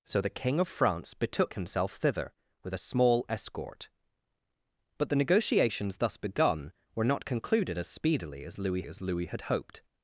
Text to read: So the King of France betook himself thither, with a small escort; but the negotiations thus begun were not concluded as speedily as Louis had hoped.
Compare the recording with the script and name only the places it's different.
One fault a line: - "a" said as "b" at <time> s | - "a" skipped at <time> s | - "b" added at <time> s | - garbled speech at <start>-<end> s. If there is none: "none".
- "as Louis" added at 8.9 s